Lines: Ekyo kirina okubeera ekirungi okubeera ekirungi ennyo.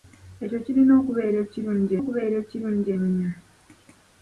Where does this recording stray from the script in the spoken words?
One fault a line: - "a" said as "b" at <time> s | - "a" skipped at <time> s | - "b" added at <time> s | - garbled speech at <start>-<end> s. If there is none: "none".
none